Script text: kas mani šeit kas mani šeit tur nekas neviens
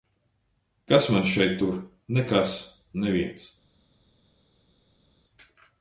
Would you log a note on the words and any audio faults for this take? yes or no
yes